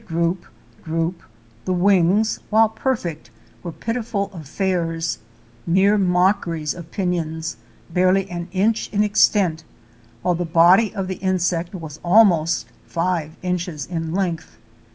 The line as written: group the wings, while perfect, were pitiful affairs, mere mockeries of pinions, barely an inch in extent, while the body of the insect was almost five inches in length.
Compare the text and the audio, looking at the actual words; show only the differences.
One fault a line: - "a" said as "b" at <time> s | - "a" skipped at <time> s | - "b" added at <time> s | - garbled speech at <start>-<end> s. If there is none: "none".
- "group" added at 0.8 s